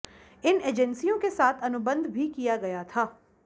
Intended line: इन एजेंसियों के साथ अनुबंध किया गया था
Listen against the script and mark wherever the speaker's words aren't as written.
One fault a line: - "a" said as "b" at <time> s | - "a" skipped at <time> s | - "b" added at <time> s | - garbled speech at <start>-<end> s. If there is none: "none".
- "भी" added at 2.1 s